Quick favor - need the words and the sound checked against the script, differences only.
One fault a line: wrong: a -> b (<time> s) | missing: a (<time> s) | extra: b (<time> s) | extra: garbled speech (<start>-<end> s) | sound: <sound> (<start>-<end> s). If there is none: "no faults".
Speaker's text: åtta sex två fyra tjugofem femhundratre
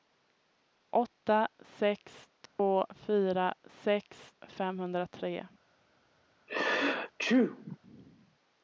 sound: dropout (2.5-2.6 s)
wrong: tjugofem -> sex (3.6 s)
sound: sneeze (6.5-7.8 s)